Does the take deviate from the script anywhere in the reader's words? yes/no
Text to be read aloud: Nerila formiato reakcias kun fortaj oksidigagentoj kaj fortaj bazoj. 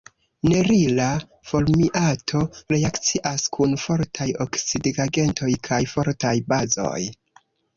no